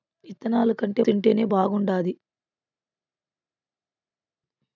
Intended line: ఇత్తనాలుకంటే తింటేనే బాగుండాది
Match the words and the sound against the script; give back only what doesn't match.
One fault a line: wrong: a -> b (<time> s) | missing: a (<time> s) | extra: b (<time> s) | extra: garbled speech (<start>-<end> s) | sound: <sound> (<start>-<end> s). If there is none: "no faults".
no faults